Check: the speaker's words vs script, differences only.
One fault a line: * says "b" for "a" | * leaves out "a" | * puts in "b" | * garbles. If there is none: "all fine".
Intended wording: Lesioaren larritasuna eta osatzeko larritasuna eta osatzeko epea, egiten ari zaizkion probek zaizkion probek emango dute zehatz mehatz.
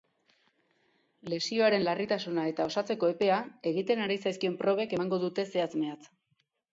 * leaves out "larritasuna eta osatzeko"
* leaves out "zaizkion probek"